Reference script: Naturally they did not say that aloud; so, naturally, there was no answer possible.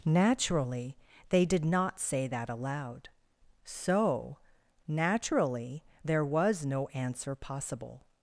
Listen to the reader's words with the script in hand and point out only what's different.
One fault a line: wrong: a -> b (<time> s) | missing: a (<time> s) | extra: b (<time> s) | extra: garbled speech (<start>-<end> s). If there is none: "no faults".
no faults